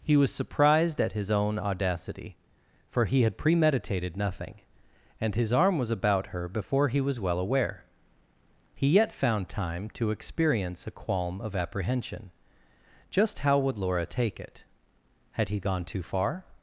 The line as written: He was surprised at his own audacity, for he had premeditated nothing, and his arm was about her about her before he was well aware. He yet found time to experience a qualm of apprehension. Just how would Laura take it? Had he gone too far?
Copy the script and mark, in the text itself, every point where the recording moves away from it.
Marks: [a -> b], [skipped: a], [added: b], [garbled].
He was surprised at his own audacity, for he had premeditated nothing, and his arm was about her [skipped: about her] before he was well aware. He yet found time to experience a qualm of apprehension. Just how would Laura take it? Had he gone too far?